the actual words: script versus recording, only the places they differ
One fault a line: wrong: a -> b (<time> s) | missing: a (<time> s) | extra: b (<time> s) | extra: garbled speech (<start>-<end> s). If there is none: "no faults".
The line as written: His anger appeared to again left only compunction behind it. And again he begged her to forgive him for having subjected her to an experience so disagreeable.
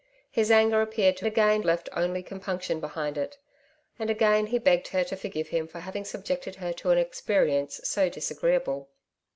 no faults